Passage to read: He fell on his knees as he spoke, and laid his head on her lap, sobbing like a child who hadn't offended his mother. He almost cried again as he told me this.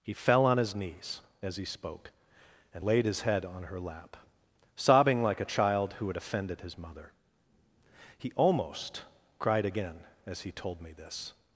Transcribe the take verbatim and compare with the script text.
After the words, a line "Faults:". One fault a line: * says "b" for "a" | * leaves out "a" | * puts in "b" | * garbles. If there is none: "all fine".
He fell on his knees as he spoke, and laid his head on her lap, sobbing like a child who had offended his mother. He almost cried again as he told me this.
Faults:
* says "had" for "hadn't"